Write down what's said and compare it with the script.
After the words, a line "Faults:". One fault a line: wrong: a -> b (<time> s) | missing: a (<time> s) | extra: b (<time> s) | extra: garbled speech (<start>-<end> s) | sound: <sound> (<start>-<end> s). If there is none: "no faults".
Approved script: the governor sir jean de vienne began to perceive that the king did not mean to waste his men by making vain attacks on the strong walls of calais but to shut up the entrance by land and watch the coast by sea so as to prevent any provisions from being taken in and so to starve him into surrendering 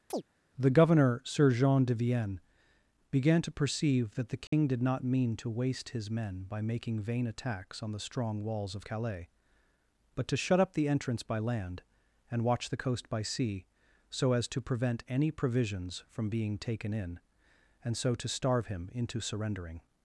the governor sir jean de vienne began to perceive that the king did not mean to waste his men by making vain attacks on the strong walls of calais but to shut up the entrance by land and watch the coast by sea so as to prevent any provisions from being taken in and so to starve him into surrendering
Faults:
sound: chirp (0.1-0.2 s)
sound: dropout (4.5-4.5 s)